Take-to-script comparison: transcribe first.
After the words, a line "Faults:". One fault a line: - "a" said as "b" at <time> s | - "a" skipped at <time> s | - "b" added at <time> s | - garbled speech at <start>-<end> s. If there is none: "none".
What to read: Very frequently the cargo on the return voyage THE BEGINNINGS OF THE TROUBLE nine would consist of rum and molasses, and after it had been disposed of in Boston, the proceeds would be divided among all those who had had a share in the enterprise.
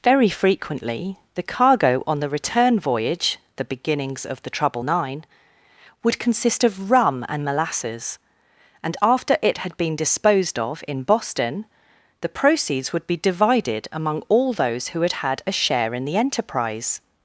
Very frequently the cargo on the return voyage THE BEGINNINGS OF THE TROUBLE nine would consist of rum and molasses, and after it had been disposed of in Boston, the proceeds would be divided among all those who had had a share in the enterprise.
Faults:
none